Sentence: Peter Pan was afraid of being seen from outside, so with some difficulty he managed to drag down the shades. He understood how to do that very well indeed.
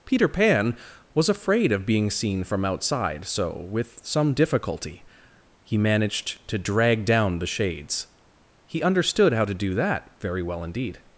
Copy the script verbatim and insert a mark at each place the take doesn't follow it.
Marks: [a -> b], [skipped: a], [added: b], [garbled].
Peter Pan was afraid of being seen from outside, so with some difficulty he managed to drag down the shades. He understood how to do that very well indeed.